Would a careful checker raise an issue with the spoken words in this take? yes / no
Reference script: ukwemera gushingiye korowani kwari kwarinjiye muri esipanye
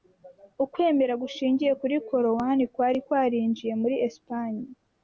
yes